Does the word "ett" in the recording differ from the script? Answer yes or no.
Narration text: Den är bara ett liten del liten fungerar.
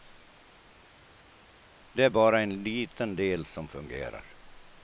yes